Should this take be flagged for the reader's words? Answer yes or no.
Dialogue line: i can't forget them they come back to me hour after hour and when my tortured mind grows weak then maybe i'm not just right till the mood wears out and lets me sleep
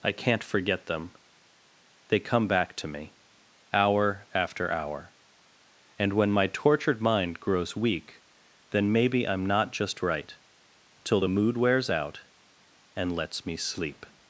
no